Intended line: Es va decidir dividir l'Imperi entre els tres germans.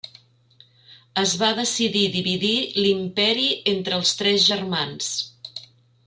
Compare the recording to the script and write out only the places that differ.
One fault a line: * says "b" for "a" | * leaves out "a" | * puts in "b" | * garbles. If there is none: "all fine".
all fine